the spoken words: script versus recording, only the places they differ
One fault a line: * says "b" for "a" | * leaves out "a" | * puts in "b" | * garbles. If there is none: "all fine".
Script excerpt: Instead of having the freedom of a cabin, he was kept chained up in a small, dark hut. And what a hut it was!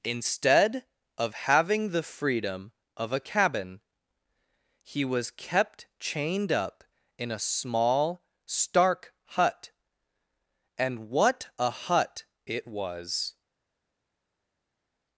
* says "stark" for "dark"